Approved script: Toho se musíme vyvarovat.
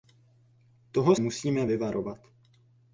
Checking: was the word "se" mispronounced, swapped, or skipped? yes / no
yes